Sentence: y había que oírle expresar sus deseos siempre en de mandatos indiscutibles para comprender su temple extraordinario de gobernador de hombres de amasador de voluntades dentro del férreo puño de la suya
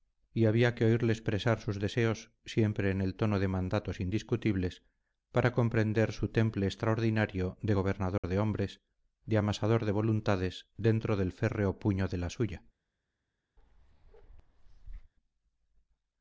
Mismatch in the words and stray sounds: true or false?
true